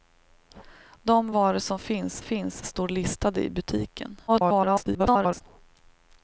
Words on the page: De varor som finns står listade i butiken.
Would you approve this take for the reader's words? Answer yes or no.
no